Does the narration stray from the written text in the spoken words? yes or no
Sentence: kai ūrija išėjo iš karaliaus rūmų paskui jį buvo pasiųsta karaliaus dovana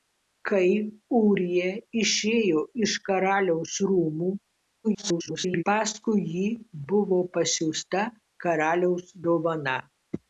yes